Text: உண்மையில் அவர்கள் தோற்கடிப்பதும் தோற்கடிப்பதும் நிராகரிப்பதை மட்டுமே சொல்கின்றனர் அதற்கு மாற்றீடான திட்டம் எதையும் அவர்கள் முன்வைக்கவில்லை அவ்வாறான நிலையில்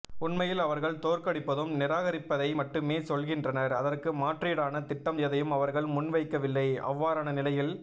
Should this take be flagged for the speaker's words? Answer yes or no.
yes